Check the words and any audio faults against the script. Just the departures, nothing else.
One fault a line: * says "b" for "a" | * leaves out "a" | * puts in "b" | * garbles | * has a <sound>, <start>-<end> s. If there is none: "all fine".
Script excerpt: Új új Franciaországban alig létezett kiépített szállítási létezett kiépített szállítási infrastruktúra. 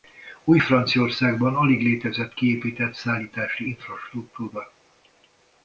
* leaves out "új"
* leaves out "létezett kiépített szállítási"